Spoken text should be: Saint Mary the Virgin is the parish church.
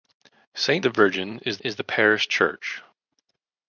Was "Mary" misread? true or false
true